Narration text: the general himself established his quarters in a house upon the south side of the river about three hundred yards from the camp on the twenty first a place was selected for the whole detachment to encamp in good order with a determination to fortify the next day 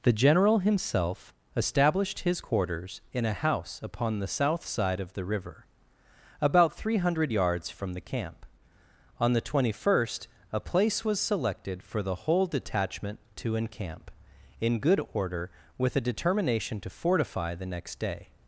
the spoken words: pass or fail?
pass